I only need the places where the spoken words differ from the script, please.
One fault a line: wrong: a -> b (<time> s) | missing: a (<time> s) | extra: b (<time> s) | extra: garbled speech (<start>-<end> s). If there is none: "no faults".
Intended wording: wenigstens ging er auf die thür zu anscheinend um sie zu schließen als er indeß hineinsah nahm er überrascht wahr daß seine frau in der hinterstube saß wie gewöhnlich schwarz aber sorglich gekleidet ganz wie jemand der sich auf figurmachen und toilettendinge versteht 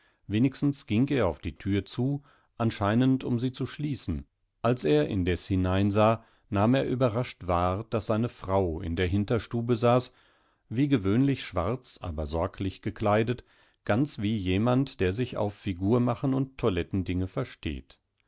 no faults